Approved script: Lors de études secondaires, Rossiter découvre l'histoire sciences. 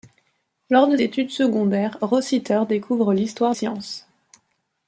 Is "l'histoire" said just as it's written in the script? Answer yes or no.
yes